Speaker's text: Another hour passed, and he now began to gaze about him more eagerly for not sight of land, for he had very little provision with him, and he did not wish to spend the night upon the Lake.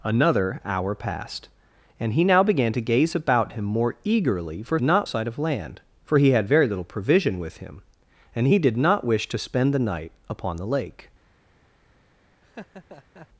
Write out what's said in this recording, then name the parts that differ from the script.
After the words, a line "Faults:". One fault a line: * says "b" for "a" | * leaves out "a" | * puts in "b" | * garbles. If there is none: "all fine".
Another hour passed, and he now began to gaze about him more eagerly for not sight of land, for he had very little provision with him, and he did not wish to spend the night upon the Lake.
Faults:
all fine